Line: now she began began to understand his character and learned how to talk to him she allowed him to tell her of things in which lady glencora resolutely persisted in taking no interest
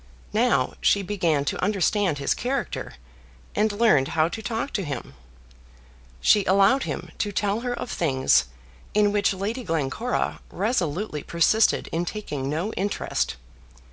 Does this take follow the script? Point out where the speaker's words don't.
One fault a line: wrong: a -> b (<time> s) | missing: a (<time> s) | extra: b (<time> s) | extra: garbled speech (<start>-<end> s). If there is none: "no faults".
missing: began (1.4 s)